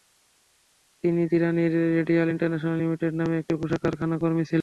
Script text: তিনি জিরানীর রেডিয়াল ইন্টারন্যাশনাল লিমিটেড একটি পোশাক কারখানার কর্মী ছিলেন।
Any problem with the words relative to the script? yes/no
yes